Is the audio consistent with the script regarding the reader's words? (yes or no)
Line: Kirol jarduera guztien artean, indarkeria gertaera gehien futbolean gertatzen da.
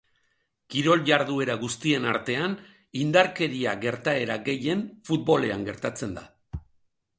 yes